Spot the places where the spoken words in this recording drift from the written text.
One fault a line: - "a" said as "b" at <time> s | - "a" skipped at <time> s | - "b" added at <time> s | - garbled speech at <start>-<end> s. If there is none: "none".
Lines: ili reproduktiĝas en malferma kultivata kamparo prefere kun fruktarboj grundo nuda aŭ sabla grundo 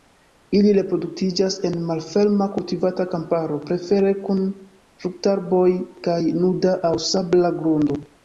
- "grundo" said as "kaj" at 6.1 s